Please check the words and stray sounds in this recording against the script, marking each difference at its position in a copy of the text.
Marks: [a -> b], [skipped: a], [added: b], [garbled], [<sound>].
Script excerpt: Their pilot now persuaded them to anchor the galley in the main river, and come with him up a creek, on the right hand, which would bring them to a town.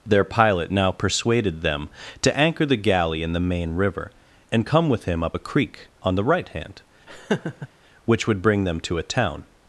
Their pilot now persuaded them to anchor the galley in the main river, and come with him up a creek, on the right hand, [laugh] which would bring them to a town.